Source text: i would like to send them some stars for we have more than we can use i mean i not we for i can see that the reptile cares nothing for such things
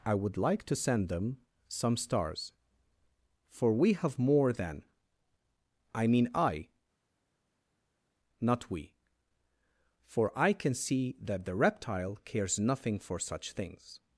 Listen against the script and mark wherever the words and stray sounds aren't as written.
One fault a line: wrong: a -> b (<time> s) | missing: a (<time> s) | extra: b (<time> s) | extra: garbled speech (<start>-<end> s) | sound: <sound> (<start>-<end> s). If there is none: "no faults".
missing: we can use (4.8 s)